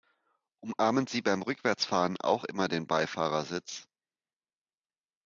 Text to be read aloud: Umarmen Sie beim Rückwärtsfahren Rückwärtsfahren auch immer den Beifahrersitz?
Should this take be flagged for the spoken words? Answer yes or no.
yes